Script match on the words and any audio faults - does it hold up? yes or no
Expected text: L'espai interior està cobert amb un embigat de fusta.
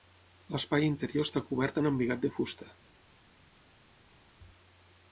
no